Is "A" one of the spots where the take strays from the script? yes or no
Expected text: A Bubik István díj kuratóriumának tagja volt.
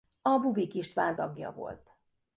no